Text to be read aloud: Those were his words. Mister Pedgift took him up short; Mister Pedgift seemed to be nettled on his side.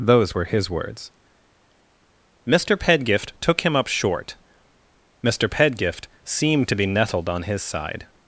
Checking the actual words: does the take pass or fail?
pass